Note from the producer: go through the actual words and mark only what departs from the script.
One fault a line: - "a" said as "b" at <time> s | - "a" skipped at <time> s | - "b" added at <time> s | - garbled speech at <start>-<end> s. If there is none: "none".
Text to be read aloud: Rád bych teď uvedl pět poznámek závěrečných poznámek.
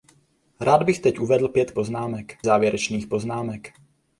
none